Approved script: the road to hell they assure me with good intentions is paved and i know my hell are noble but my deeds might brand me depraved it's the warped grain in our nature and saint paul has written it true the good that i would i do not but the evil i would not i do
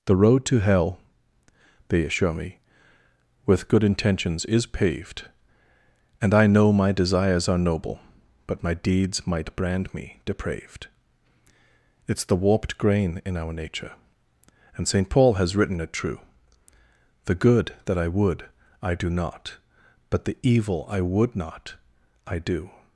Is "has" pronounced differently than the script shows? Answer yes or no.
no